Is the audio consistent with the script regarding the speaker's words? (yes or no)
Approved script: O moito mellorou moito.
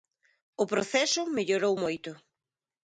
no